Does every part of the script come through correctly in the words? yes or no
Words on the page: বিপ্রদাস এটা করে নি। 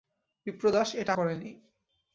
yes